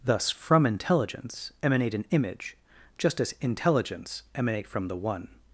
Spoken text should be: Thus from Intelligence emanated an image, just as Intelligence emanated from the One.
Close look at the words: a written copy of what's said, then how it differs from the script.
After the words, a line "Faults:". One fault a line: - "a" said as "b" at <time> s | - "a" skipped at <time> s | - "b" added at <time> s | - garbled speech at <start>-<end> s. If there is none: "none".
Thus from Intelligence emanate an image, just as Intelligence emanate from the One.
Faults:
- "emanated" said as "emanate" at 1.6 s
- "emanated" said as "emanate" at 4.3 s